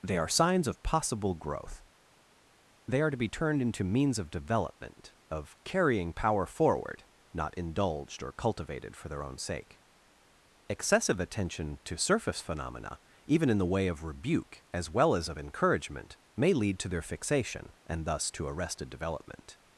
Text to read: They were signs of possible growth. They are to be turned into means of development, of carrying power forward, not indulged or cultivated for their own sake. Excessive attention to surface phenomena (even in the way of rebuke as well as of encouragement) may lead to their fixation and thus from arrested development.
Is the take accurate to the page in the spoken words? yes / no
no